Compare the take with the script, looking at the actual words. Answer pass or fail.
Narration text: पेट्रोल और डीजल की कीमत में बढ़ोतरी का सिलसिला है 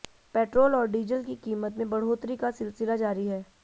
fail